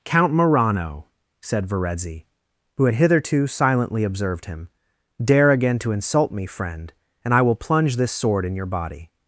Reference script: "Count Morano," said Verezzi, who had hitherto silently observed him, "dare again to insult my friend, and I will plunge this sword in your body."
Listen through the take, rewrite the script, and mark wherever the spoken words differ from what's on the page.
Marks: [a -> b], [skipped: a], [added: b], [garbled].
"Count Morano," said Verezzi, who had hitherto silently observed him, "dare again to insult [my -> me] friend, and I will plunge this sword in your body."